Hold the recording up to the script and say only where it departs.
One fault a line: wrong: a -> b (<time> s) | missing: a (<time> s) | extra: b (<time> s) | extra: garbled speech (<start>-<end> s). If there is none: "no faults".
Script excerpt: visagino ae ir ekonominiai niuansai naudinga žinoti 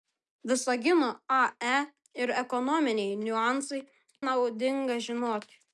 no faults